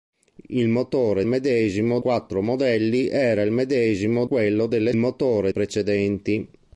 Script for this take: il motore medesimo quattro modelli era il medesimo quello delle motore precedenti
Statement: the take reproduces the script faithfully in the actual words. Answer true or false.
true